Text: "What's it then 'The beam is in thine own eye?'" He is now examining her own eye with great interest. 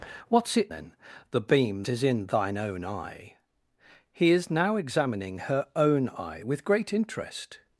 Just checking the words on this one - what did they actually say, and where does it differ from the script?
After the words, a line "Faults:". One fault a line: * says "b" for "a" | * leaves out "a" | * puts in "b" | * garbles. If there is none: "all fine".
"What's it then 'The beam is in thine own eye?'" He is now examining her own eye with great interest.
Faults:
all fine